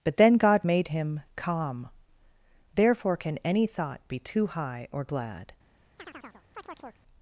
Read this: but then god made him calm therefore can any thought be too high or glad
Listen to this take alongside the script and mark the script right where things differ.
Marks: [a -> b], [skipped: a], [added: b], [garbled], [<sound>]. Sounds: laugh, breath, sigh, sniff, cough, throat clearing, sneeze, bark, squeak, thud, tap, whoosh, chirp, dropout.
but then god made him calm therefore can any thought be too high or glad [chirp]